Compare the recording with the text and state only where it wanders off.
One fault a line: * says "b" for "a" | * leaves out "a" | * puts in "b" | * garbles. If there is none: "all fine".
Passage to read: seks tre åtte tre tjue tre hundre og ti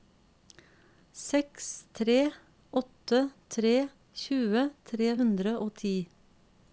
all fine